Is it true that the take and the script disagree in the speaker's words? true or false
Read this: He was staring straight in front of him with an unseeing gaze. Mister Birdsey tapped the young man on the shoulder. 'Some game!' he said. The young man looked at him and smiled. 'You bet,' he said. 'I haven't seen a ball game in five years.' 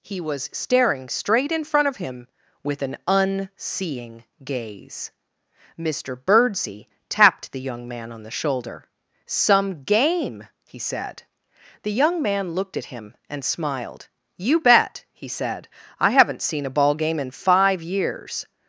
false